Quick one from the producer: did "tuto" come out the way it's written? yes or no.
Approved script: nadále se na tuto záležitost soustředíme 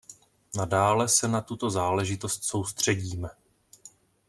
yes